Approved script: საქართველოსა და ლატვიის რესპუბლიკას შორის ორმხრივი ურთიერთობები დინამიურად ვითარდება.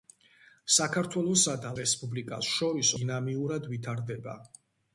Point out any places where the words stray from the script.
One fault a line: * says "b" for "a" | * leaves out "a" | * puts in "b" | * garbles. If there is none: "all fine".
* leaves out "ლატვიის"
* leaves out "ორმხრივი ურთიერთობები"